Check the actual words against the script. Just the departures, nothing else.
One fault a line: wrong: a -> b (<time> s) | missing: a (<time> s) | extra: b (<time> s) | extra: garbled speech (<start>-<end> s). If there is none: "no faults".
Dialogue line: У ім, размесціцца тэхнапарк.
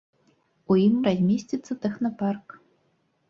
no faults